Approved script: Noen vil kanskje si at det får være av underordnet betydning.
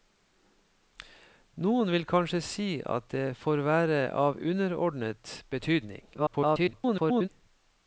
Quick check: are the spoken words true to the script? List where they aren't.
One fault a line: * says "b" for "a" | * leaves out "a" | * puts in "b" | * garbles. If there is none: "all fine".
* garbles